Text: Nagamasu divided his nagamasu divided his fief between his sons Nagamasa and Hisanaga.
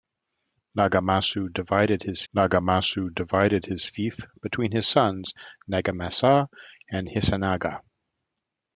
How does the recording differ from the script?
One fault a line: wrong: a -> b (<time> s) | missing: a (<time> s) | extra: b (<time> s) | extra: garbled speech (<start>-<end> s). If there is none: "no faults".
no faults